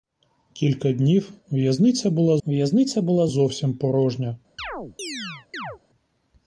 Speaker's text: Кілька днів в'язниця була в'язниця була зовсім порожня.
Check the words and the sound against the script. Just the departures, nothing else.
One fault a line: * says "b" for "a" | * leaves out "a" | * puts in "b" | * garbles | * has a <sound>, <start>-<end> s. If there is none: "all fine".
* has a chirp, 4.6-5.8 s